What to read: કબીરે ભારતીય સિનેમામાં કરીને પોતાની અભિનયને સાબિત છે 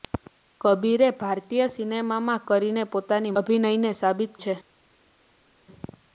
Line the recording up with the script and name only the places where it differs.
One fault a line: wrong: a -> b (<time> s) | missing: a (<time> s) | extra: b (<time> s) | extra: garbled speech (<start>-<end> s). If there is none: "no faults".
no faults